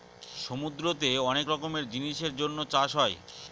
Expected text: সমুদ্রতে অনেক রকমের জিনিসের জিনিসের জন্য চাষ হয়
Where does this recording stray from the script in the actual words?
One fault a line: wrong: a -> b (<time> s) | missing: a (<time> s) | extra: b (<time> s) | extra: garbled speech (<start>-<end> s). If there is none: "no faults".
missing: জিনিসের (2.3 s)